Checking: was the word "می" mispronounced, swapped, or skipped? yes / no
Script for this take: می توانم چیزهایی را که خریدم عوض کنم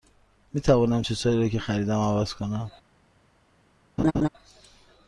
no